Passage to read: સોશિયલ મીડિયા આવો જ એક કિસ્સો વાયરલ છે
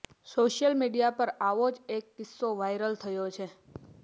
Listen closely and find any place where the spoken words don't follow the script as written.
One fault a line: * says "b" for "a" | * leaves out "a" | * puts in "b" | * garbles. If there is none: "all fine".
* puts in "પર"
* puts in "થયો"